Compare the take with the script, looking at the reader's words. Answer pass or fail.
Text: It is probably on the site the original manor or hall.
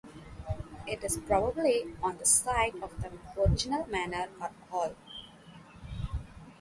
fail